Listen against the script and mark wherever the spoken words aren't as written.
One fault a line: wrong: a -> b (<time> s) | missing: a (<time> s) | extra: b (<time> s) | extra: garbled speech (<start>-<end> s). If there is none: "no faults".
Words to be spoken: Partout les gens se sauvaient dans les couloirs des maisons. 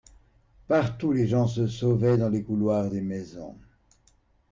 no faults